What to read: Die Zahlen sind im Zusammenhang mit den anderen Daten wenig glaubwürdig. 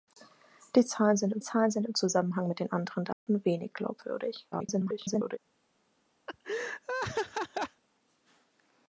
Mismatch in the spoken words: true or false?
true